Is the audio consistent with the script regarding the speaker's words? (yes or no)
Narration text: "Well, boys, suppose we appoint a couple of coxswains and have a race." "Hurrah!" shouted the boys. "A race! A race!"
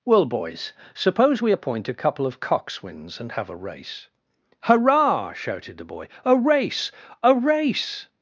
no